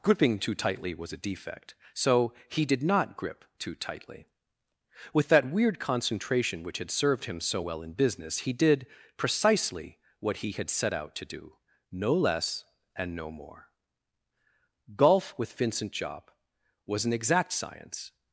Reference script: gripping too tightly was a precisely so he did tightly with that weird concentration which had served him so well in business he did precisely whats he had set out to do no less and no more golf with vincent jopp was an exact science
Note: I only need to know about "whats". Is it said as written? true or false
false